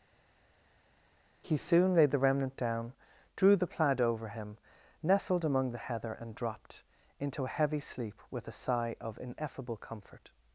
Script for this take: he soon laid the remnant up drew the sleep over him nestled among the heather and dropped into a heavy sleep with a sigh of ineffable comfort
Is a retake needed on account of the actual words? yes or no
yes